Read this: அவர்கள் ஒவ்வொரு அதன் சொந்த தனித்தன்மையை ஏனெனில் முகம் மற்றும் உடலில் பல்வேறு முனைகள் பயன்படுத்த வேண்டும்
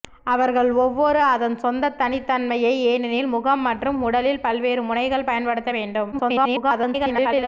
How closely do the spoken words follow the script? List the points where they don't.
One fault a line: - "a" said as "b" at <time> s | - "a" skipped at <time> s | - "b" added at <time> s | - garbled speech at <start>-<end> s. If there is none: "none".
- garbled speech at 6.1-7.5 s